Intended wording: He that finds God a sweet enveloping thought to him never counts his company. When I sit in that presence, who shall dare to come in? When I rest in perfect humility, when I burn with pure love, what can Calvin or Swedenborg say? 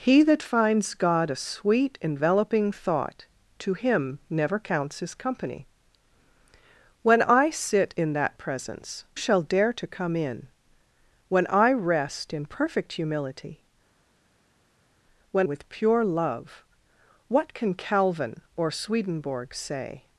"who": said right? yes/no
no